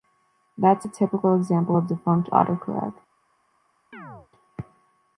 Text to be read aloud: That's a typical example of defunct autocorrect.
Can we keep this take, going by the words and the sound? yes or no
no